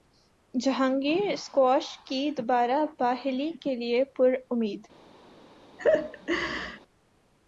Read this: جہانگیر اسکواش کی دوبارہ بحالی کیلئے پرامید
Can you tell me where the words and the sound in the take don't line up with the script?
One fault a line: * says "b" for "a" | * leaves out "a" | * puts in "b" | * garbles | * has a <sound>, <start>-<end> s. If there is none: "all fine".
* has a laugh, 5.8-6.8 s